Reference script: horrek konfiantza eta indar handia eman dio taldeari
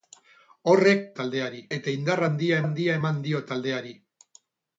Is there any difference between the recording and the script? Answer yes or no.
yes